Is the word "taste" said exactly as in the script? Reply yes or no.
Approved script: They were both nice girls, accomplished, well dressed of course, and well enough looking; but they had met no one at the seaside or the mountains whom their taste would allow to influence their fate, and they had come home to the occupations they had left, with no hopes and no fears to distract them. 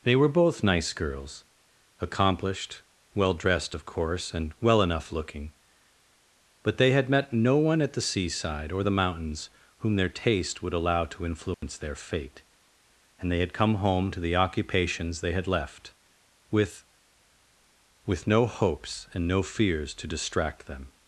yes